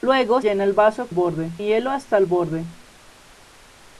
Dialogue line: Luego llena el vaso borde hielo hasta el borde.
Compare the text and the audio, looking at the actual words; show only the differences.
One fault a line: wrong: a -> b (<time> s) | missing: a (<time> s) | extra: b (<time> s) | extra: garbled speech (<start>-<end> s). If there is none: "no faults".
no faults